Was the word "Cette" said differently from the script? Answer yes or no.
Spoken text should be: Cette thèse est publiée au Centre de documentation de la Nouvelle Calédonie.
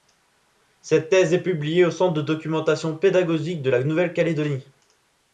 no